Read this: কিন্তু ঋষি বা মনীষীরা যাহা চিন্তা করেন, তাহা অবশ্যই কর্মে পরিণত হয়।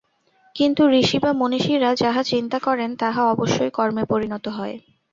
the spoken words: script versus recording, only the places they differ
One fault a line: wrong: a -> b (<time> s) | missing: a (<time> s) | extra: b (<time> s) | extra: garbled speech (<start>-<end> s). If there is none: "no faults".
no faults